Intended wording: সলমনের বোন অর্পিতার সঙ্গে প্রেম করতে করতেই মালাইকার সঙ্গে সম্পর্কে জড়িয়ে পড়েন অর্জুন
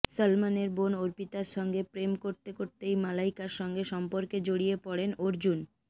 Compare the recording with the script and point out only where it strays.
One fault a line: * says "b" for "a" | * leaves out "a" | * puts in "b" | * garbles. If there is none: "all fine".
all fine